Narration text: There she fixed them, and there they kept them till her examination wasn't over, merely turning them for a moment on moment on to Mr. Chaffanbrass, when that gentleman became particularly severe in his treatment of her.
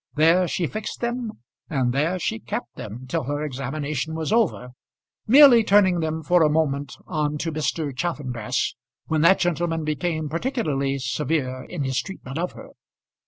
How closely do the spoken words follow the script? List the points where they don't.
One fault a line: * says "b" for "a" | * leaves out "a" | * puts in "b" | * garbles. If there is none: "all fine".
* says "she" for "they"
* says "was" for "wasn't"
* leaves out "moment on"